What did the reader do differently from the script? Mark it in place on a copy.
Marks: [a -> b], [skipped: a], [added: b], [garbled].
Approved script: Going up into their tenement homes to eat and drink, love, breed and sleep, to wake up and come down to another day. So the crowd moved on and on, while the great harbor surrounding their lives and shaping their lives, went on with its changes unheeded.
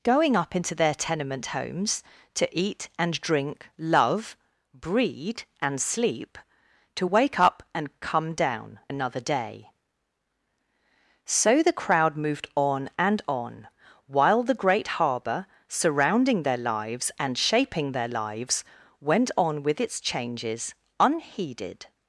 Going up into their tenement homes to eat and drink, love, breed and sleep, to wake up and come down [skipped: to] another day. So the crowd moved on and on, while the great harbor surrounding their lives and shaping their lives, went on with its changes unheeded.